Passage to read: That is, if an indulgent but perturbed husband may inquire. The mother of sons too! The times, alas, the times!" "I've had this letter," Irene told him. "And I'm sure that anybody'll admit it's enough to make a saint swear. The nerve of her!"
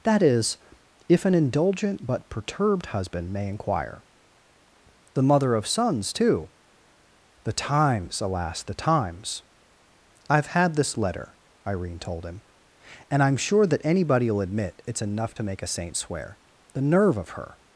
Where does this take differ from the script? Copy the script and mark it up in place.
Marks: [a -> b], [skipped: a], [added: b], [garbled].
That is, if an indulgent but perturbed husband may inquire. The mother of sons too! The times, alas, the times!" "I've had this letter," Irene told him. "And I'm sure that anybody'll admit it's enough to make a saint swear. The nerve of her!"